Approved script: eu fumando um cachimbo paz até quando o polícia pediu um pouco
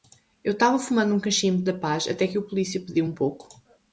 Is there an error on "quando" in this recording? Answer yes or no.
yes